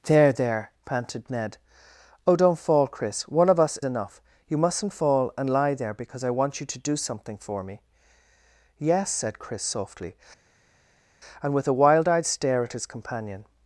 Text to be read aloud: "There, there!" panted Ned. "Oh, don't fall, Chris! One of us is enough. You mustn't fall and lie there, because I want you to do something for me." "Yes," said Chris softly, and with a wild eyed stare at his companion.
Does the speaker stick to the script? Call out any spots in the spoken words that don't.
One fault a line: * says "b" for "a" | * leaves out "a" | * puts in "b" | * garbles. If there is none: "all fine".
* leaves out "is"